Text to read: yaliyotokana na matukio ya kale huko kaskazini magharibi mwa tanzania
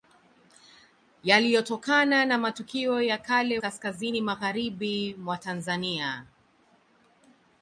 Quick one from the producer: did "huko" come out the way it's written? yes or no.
no